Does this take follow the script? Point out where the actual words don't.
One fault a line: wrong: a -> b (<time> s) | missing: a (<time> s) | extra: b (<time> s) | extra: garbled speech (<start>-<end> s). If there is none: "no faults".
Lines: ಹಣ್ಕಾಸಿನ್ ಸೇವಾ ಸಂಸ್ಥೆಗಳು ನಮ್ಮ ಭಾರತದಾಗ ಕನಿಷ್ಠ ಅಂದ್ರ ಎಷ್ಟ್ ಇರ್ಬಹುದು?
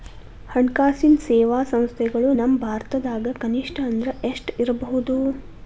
no faults